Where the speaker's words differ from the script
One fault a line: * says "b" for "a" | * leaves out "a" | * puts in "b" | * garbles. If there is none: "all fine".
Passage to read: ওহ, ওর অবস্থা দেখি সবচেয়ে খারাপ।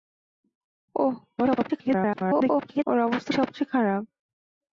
* garbles
* leaves out "দেখি"